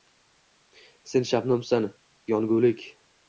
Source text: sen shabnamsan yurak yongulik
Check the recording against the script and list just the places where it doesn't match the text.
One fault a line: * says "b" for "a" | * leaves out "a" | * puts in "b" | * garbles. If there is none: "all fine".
* leaves out "yurak"